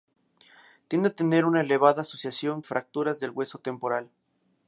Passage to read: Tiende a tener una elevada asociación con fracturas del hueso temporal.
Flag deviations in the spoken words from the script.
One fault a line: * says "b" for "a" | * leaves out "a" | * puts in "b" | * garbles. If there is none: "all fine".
* leaves out "con"